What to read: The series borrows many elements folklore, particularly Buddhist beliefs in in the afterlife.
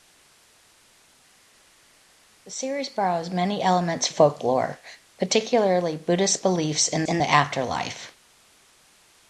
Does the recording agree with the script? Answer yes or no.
yes